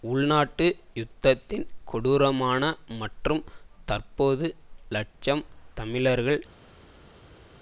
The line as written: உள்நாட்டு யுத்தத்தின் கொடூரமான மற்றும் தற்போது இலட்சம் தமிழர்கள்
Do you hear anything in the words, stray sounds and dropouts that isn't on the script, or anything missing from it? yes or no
no